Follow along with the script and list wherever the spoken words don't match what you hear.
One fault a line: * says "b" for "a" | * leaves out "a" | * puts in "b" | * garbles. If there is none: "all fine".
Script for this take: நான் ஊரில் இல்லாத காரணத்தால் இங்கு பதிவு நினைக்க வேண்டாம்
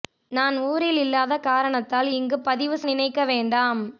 all fine